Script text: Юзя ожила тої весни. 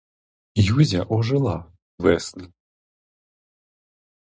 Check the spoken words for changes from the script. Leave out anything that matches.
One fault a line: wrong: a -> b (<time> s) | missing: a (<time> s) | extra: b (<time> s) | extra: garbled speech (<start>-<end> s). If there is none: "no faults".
missing: тої (1.6 s)